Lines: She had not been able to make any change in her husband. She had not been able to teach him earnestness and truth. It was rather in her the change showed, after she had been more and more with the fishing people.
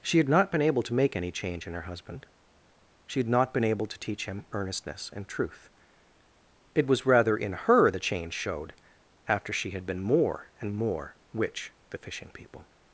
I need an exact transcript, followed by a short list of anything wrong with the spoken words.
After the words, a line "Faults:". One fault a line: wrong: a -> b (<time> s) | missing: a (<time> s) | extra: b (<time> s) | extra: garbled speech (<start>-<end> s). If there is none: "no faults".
She had not been able to make any change in her husband. She had not been able to teach him earnestness and truth. It was rather in her the change showed, after she had been more and more which the fishing people.
Faults:
wrong: with -> which (11.3 s)